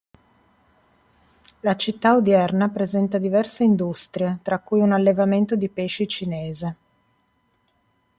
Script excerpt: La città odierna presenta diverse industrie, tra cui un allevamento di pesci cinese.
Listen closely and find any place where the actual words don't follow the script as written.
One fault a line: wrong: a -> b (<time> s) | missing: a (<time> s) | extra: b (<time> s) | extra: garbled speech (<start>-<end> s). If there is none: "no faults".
no faults